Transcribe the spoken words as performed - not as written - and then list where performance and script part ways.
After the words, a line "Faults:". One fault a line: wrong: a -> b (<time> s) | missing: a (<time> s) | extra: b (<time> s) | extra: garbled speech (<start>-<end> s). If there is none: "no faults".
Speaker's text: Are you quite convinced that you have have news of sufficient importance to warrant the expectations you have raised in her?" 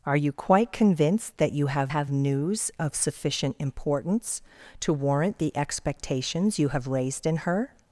Are you quite convinced that you have have news of sufficient importance to warrant the expectations you have raised in her?"
Faults:
no faults